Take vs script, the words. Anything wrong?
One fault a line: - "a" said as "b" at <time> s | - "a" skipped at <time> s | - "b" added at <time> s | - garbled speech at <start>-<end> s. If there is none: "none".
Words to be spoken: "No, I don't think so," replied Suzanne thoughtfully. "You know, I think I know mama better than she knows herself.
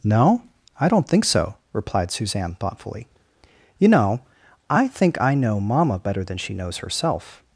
none